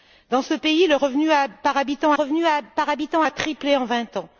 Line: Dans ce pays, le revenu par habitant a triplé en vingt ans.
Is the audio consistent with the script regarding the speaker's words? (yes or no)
no